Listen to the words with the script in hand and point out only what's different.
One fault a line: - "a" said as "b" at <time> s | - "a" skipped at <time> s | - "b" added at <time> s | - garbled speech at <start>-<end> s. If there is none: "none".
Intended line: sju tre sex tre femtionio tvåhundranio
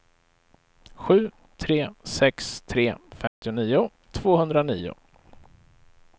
none